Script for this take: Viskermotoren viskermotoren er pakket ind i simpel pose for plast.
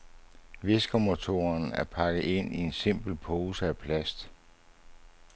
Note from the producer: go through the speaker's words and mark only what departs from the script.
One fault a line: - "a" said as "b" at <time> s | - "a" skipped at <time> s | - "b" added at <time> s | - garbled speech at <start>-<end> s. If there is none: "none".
- "viskermotoren" skipped at 1.7 s
- "en" added at 2.6 s
- "for" said as "af" at 3.7 s